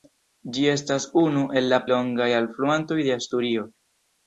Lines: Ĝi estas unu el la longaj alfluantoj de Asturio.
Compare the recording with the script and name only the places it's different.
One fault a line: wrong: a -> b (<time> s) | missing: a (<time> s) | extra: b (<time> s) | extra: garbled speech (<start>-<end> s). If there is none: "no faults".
no faults